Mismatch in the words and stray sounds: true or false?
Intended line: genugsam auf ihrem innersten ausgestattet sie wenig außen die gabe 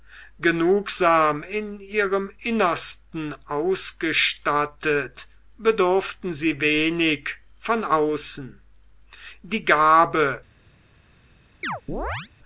true